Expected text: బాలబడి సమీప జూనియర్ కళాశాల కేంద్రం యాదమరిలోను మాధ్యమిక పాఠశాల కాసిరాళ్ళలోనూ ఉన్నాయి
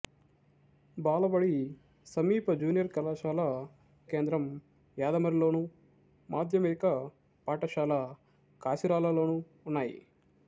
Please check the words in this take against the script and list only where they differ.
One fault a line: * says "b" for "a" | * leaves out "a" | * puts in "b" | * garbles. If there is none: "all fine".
all fine